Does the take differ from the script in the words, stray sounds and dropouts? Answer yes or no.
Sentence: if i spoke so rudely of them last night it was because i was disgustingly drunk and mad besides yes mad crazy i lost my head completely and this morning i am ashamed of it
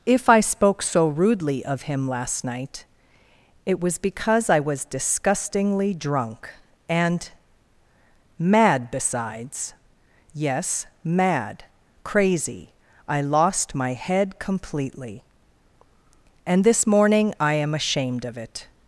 yes